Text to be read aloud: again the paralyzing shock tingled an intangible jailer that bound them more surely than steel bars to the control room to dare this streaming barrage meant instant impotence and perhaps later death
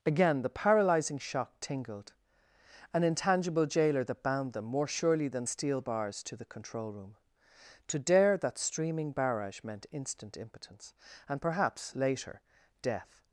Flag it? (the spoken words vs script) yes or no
yes